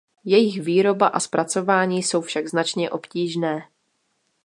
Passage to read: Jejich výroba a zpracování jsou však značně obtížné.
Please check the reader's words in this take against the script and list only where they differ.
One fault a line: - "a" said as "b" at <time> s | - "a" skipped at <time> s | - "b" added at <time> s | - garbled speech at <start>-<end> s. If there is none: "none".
none